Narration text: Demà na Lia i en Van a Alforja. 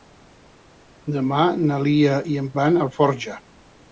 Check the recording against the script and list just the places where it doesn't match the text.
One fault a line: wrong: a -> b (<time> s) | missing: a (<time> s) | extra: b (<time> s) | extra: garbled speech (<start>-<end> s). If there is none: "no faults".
no faults